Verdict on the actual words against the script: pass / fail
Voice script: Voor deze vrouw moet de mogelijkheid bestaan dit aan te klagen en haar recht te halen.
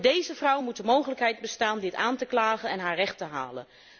pass